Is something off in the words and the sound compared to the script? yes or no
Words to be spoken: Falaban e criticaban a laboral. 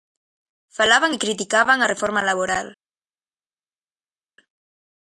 yes